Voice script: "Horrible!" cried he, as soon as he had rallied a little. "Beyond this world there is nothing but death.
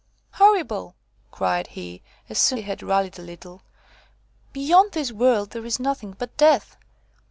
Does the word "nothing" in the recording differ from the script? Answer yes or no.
no